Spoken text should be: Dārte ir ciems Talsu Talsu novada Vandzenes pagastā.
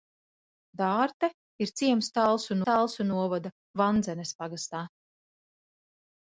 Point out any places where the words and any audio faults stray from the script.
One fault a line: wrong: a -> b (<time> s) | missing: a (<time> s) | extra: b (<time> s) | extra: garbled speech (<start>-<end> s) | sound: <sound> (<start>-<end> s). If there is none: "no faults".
no faults